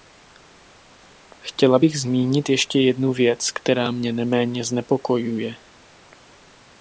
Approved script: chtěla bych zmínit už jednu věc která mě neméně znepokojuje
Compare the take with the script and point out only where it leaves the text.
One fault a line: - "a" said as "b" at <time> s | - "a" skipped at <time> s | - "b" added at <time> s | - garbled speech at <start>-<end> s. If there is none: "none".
- "už" said as "ještě" at 2.5 s